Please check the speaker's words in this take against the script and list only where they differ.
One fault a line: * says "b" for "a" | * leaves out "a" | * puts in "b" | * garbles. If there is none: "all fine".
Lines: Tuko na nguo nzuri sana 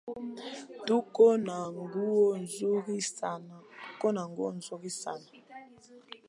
all fine